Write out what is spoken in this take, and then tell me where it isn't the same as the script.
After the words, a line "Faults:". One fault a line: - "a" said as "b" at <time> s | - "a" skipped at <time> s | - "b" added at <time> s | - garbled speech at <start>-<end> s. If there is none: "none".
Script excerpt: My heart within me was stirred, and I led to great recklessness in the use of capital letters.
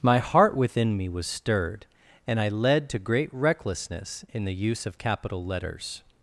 My heart within me was stirred, and I led to great recklessness in the use of capital letters.
Faults:
none